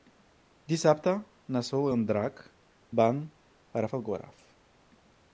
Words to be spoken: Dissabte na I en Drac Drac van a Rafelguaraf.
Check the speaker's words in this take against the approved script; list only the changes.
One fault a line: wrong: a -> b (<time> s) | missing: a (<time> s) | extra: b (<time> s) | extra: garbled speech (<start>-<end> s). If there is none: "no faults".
extra: Sol (1.7 s)
missing: Drac (2.4 s)